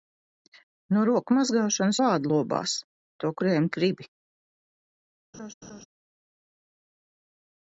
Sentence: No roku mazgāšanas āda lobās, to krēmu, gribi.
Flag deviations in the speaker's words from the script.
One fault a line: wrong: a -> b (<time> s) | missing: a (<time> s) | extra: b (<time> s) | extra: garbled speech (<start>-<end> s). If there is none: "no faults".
no faults